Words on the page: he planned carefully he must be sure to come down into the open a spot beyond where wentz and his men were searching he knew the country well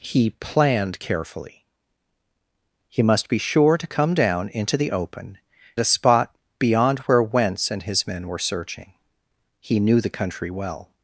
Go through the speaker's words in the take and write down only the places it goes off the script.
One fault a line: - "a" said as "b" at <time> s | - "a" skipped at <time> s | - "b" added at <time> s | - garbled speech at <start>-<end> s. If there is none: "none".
none